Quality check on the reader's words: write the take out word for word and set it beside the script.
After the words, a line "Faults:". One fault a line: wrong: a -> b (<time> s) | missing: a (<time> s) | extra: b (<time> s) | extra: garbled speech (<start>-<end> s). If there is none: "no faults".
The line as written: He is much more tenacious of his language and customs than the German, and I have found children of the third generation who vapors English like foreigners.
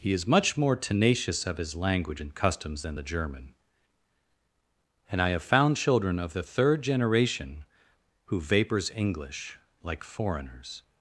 He is much more tenacious of his language and customs than the German, and I have found children of the third generation who vapors English like foreigners.
Faults:
no faults